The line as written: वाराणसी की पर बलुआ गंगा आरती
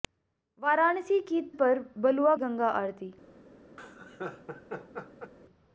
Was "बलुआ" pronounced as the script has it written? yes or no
yes